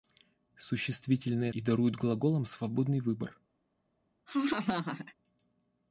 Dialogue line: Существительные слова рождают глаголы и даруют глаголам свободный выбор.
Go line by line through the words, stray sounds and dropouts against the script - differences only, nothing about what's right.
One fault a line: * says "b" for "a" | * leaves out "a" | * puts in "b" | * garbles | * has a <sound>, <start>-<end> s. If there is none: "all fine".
* leaves out "слова рождают глаголы"
* has a laugh, 4.3-5.1 s